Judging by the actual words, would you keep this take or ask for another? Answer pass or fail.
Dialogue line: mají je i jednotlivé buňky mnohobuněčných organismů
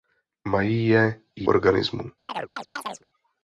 fail